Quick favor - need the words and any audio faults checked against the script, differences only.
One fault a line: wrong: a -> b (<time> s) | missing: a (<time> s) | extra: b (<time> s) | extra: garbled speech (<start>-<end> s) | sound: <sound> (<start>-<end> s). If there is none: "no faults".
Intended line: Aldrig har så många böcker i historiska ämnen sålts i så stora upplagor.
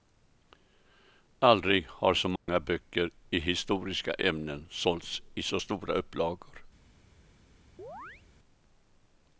sound: dropout (2.4-2.5 s)
sound: chirp (7.8-8.2 s)